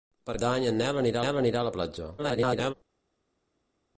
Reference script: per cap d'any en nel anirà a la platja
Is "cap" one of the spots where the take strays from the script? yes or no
yes